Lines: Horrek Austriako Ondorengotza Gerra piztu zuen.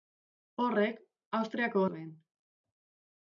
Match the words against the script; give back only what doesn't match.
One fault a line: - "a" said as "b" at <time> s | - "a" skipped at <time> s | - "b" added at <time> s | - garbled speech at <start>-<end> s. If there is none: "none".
- "Ondorengotza Gerra piztu" skipped at 1.8 s